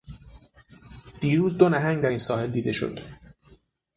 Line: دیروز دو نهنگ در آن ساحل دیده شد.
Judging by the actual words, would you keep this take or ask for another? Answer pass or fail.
fail